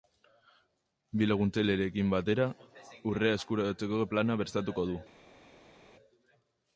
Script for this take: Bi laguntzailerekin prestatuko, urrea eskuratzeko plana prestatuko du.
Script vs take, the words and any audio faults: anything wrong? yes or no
yes